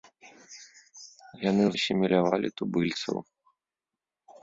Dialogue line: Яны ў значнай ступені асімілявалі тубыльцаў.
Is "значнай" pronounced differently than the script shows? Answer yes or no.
yes